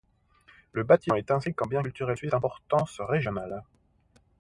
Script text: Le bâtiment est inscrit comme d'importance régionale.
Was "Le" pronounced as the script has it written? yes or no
yes